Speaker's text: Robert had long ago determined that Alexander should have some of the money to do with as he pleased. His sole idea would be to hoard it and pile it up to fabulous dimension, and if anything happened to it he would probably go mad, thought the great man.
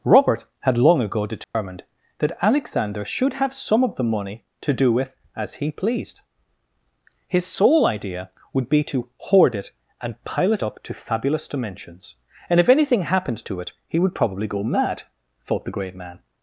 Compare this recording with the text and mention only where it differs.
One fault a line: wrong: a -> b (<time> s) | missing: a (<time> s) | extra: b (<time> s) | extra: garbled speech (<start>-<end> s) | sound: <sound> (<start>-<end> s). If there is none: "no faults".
sound: dropout (1.4-1.5 s)
wrong: dimension -> dimensions (11.5 s)